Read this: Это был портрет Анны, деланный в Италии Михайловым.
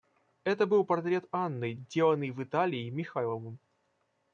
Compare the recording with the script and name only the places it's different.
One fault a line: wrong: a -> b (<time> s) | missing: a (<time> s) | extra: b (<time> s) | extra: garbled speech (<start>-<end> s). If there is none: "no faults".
no faults